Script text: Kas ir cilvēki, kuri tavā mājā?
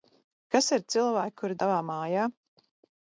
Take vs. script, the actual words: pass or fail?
pass